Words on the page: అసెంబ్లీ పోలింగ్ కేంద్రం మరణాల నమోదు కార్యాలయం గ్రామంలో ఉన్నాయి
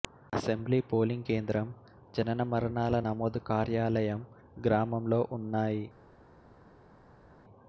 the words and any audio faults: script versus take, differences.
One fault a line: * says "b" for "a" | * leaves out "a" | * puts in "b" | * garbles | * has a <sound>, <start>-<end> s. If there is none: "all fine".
* puts in "జనన"